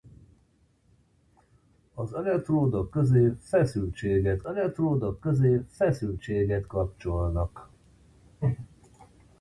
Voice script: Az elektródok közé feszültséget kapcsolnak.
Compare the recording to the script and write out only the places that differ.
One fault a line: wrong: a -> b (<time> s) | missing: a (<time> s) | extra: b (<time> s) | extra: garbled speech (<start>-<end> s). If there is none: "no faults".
extra: elektródok közé feszültséget (4.4 s)